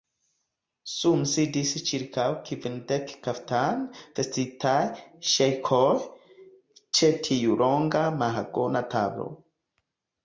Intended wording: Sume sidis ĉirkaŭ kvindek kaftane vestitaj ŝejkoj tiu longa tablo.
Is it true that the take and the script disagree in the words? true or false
true